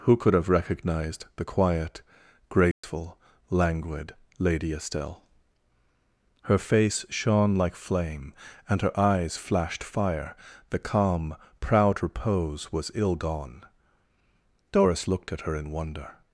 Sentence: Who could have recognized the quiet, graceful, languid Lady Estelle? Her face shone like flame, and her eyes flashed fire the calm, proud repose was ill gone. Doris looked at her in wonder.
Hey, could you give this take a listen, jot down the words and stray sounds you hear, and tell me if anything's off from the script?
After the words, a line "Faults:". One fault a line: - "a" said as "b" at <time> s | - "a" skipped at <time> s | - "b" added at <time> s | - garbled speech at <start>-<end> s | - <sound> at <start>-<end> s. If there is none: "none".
Who could have recognized the quiet, graceful, languid Lady Estelle? Her face shone like flame, and her eyes flashed fire the calm, proud repose was ill gone. Doris looked at her in wonder.
Faults:
- dropout at 2.7-2.8 s